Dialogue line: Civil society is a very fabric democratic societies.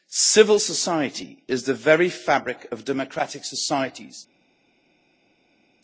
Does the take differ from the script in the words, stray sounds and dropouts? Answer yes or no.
yes